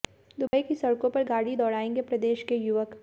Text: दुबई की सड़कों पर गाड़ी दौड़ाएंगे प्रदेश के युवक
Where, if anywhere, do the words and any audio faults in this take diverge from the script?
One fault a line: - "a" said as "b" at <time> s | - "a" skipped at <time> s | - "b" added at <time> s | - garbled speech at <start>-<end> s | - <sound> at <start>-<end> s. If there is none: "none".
- dropout at 0.5-0.5 s